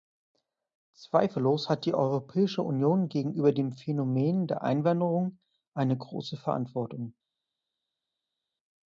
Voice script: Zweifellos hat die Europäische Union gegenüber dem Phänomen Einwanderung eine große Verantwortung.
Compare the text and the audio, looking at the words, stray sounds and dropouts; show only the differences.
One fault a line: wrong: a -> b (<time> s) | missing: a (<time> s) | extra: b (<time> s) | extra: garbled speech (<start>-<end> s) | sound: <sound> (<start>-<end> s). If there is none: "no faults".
extra: der (4.5 s)